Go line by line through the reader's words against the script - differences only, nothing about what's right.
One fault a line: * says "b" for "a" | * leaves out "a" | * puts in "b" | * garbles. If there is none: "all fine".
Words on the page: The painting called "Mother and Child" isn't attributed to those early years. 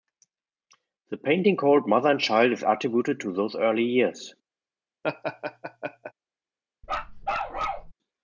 * says "is" for "isn't"